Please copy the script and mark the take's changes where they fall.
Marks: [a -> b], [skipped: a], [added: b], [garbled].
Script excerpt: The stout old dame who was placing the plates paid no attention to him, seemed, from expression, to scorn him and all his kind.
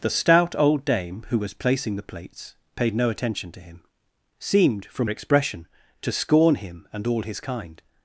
The stout old dame who was placing the plates paid no attention to him, seemed, from expression, to scorn him and all his kind.